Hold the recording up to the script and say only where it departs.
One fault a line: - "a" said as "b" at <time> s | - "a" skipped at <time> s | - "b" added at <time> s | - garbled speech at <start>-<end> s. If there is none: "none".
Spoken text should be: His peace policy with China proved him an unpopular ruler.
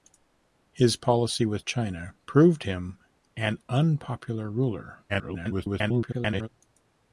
- "peace" skipped at 1.0 s
- garbled speech at 5.1-6.5 s